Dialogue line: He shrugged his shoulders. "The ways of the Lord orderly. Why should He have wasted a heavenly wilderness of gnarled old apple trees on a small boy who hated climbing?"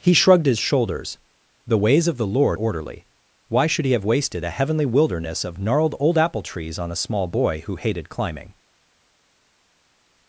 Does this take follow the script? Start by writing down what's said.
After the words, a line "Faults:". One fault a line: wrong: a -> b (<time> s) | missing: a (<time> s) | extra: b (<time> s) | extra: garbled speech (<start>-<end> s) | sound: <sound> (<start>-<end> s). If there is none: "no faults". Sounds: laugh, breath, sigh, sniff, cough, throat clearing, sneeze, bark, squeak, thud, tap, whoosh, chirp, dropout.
He shrugged his shoulders. "The ways of the Lord orderly. Why should He have wasted a heavenly wilderness of gnarled old apple trees on a small boy who hated climbing?"
Faults:
no faults